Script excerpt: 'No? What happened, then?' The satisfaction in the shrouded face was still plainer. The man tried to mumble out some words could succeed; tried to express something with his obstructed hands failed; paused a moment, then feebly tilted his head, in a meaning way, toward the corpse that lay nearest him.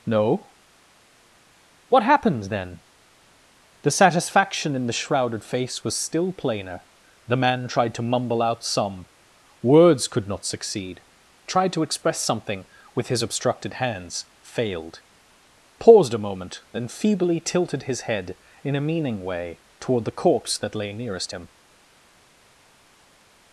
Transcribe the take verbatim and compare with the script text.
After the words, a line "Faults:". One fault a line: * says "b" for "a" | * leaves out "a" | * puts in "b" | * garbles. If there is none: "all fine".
'No? What happened, then?' The satisfaction in the shrouded face was still plainer. The man tried to mumble out some words could not succeed; tried to express something with his obstructed hands failed; paused a moment, then feebly tilted his head, in a meaning way, toward the corpse that lay nearest him.
Faults:
* puts in "not"